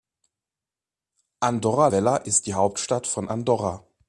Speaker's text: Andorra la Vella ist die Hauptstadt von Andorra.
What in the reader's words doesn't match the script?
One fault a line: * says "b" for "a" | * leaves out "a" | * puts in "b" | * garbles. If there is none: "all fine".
* leaves out "la"